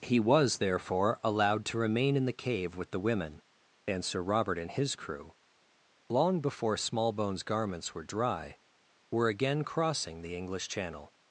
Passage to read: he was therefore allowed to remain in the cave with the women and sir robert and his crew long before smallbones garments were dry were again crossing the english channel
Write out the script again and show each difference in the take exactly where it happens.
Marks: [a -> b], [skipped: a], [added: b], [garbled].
he was therefore allowed to remain in the cave with the women and sir robert and his crew long before smallbones garments were dry were again crossing the english channel